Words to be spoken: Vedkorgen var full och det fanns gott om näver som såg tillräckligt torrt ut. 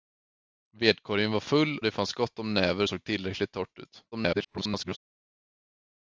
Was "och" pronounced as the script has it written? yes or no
no